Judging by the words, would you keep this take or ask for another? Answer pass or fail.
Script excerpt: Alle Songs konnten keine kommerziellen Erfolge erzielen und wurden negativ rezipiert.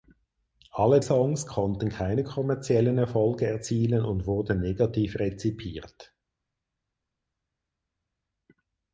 pass